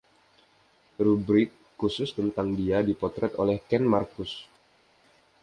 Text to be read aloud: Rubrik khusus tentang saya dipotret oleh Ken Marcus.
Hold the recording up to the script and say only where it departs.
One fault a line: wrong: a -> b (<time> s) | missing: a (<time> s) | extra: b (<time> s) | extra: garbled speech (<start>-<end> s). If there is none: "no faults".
wrong: saya -> dia (2.6 s)